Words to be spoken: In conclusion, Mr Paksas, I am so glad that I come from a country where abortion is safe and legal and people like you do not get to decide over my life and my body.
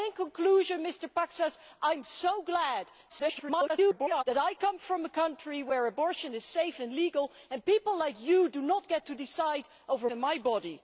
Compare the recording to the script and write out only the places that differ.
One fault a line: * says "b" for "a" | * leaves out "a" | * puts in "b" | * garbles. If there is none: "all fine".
* garbles
* leaves out "my life"